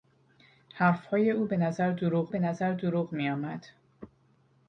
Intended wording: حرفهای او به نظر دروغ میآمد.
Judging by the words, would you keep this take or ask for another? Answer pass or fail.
fail